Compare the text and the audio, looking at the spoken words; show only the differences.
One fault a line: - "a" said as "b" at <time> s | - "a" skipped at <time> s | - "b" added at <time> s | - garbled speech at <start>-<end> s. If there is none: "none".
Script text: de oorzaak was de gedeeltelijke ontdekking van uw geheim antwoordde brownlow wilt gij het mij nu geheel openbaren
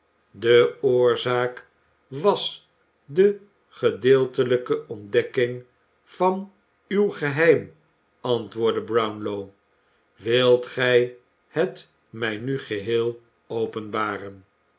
none